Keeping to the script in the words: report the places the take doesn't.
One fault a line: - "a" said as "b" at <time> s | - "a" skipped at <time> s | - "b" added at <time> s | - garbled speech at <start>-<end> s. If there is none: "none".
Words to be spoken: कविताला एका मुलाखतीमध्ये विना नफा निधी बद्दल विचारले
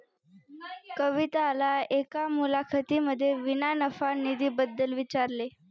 none